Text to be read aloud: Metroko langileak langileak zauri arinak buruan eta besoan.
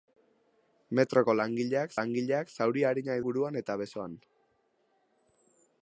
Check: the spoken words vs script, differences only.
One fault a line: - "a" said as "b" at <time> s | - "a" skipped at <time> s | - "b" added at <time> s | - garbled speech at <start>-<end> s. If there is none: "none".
none